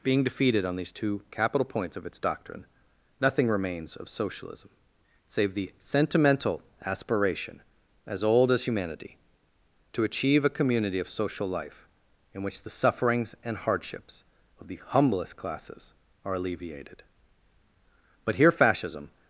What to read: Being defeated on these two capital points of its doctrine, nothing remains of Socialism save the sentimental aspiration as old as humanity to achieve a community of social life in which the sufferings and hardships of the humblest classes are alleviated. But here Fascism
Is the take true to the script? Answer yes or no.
yes